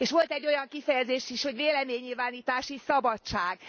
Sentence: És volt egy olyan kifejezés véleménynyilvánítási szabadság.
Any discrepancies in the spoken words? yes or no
yes